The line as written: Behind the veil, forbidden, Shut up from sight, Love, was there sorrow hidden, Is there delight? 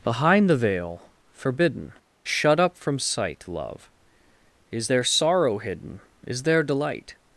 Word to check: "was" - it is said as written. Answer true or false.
false